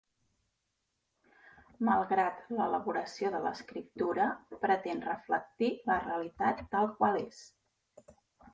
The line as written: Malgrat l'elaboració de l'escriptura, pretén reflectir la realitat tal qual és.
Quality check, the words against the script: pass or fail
pass